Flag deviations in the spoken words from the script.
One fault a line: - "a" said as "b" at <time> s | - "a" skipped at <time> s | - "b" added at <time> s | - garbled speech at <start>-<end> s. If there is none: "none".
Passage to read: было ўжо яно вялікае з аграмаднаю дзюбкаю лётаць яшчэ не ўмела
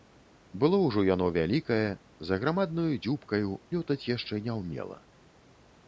none